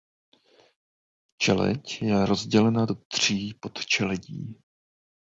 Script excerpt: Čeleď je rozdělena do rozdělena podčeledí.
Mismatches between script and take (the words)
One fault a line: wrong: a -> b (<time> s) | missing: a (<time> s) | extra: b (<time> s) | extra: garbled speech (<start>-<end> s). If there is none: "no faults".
wrong: rozdělena -> tří (3.1 s)